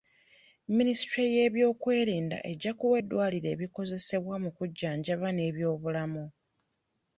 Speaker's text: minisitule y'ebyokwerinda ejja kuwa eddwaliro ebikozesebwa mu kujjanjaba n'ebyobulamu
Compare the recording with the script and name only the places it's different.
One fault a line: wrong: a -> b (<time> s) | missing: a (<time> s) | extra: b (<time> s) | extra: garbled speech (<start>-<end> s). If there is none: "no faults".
no faults